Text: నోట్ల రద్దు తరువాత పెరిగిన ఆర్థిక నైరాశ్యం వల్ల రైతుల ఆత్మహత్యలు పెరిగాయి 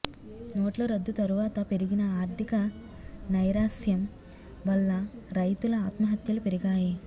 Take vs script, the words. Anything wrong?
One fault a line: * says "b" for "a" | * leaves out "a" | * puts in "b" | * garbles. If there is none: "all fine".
all fine